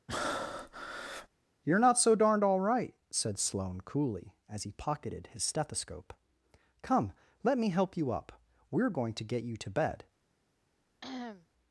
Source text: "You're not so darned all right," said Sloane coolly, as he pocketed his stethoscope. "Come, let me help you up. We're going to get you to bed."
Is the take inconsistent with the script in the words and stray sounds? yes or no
yes